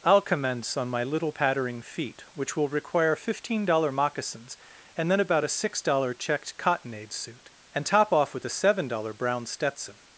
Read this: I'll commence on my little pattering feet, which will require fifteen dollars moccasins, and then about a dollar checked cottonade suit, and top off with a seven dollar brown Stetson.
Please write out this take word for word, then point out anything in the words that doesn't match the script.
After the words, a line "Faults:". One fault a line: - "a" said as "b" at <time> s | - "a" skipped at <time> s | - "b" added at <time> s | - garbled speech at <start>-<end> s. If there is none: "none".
I'll commence on my little pattering feet, which will require fifteen dollar moccasins, and then about a six dollar checked cottonade suit, and top off with a seven dollar brown Stetson.
Faults:
- "dollars" said as "dollar" at 3.6 s
- "six" added at 5.5 s